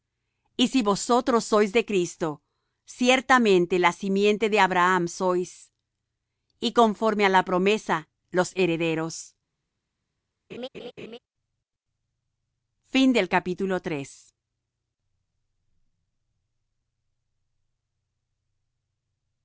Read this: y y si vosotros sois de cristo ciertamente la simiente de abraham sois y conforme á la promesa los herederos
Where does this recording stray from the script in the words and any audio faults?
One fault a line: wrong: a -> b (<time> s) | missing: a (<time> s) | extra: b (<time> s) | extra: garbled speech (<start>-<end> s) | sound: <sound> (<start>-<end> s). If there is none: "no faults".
missing: y (0.7 s)
sound: laugh (10.5-11.2 s)